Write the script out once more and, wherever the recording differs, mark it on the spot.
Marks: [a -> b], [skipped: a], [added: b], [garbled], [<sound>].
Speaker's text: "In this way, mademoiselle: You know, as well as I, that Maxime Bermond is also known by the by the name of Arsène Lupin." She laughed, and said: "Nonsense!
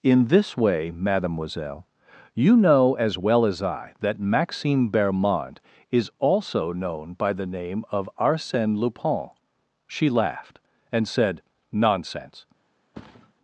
"In this way, mademoiselle: You know, as well as I, that Maxime Bermond is also known by the [skipped: by the] name of Arsène Lupin." She laughed, and said: "Nonsense! [thud]